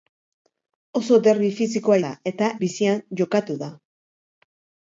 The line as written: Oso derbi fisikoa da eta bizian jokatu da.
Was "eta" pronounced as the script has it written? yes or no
yes